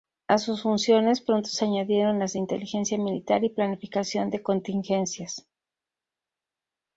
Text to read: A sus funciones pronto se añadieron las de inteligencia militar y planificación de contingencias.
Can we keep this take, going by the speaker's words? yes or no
yes